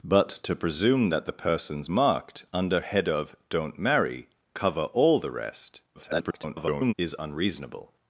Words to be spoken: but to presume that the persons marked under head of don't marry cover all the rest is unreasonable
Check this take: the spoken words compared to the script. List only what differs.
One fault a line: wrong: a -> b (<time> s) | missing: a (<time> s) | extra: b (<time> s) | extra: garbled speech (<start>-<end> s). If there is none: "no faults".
extra: garbled speech (5.9-6.9 s)